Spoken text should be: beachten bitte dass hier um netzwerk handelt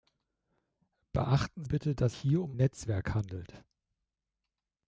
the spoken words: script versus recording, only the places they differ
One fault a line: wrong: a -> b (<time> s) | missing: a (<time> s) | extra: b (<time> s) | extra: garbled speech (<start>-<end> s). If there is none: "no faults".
no faults